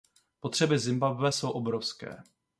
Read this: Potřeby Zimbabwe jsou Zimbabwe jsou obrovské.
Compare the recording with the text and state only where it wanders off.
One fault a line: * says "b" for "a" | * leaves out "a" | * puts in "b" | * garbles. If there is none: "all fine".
* leaves out "Zimbabwe jsou"